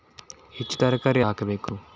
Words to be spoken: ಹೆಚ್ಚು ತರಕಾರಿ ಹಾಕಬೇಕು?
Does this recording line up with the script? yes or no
yes